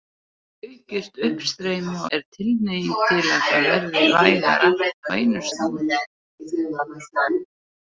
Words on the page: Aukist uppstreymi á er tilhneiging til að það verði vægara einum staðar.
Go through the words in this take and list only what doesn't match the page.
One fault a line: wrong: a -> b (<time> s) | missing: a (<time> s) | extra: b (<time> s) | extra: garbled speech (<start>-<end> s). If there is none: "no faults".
no faults